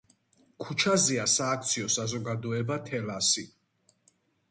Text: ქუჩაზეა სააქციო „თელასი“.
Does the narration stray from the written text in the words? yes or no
yes